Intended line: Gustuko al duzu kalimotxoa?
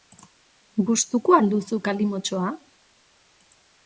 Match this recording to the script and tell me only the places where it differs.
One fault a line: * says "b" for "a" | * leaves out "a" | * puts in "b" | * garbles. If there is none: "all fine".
all fine